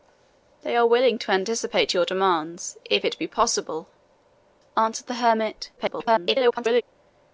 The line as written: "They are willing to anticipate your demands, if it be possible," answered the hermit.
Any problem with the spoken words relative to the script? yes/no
yes